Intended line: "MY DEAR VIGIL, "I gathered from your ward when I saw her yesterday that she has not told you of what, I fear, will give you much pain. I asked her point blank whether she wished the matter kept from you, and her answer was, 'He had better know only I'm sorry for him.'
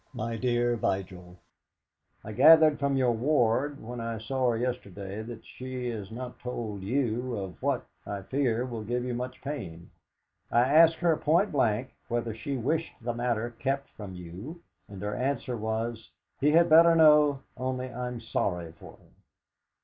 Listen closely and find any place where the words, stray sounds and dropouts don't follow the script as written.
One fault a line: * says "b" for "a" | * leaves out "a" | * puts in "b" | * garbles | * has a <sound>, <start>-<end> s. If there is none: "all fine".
all fine